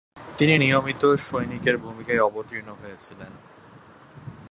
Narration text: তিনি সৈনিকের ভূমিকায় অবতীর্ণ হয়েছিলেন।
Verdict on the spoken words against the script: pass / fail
fail